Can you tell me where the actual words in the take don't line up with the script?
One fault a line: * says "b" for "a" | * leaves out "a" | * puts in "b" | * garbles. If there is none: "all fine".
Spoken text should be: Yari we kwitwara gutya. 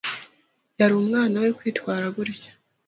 * puts in "umwana"